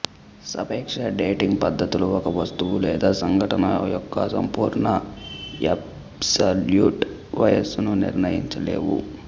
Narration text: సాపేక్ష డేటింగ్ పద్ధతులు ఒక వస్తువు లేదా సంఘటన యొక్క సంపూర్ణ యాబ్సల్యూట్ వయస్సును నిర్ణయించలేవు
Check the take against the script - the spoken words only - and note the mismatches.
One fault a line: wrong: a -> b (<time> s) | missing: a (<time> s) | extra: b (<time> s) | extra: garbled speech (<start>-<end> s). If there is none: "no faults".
no faults